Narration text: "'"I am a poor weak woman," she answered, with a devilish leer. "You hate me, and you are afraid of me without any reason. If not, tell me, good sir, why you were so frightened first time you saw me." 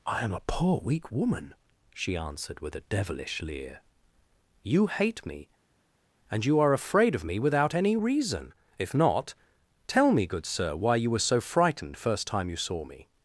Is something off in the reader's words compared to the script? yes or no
no